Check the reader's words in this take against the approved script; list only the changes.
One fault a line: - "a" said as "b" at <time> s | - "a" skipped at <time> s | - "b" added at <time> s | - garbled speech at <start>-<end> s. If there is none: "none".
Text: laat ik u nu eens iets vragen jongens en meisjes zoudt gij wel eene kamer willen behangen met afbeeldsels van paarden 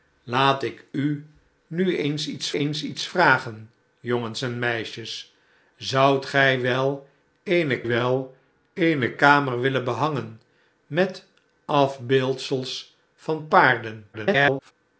- "eens iets" added at 2.5 s
- "wel eene" added at 7.9 s
- garbled speech at 14.1-14.7 s